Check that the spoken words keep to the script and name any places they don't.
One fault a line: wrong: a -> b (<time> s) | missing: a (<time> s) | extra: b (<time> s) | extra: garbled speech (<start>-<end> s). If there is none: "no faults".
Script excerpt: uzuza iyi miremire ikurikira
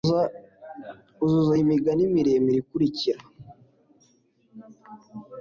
extra: migani (1.7 s)